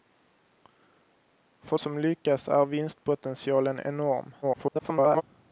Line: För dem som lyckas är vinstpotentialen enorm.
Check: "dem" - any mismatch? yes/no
yes